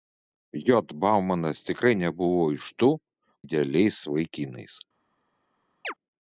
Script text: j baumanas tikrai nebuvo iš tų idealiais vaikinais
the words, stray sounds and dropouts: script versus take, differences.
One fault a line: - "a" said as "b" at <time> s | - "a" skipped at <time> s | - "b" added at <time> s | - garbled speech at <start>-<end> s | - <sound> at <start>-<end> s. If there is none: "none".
- chirp at 5.8-5.9 s